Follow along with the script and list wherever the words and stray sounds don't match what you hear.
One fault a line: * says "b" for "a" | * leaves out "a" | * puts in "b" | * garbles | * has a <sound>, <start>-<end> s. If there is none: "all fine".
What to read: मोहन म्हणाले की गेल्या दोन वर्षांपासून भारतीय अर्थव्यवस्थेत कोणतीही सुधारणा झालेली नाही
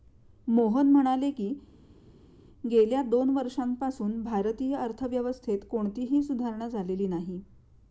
all fine